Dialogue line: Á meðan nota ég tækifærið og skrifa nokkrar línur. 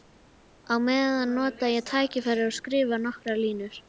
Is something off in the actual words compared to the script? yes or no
no